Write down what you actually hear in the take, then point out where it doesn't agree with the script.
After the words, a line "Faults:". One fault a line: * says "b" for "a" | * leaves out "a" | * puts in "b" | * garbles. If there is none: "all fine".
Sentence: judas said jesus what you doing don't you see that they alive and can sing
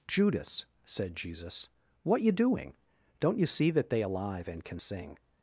judas said jesus what you doing don't you see that they alive and can sing
Faults:
all fine